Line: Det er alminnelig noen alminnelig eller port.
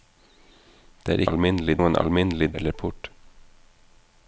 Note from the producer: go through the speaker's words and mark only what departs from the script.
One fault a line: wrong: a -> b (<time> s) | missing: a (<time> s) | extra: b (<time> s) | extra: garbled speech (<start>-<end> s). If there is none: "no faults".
no faults